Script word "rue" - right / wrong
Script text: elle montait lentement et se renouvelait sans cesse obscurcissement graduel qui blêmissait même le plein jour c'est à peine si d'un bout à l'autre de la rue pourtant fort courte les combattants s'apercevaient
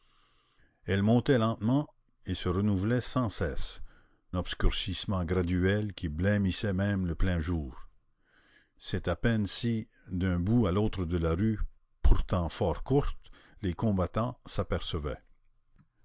right